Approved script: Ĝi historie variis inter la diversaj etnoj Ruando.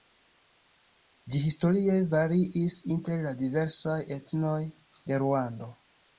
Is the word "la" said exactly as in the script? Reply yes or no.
yes